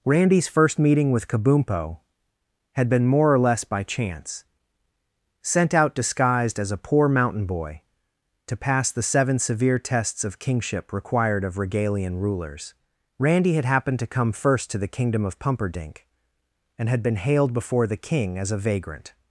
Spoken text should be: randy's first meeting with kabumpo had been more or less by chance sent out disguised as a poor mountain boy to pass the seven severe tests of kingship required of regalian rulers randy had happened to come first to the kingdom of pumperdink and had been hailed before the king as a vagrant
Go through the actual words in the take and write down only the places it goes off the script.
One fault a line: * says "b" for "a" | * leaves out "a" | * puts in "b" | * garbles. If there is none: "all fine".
all fine